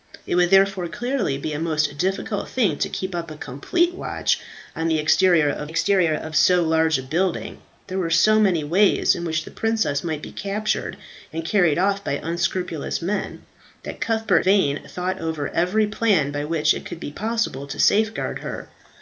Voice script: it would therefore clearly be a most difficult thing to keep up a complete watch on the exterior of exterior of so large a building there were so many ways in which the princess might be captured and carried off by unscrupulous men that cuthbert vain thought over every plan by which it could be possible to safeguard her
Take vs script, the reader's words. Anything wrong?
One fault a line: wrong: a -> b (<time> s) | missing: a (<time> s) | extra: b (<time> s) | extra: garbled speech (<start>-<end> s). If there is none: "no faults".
no faults